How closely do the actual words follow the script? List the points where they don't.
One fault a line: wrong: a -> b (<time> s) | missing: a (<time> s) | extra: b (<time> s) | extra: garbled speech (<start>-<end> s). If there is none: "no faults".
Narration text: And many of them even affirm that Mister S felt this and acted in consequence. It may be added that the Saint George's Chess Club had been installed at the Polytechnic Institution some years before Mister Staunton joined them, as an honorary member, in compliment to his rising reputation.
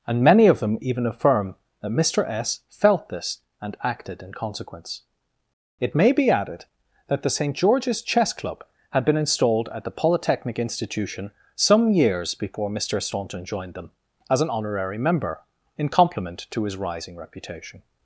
no faults